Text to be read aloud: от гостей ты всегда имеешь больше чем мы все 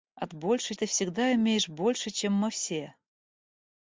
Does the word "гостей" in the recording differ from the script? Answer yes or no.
yes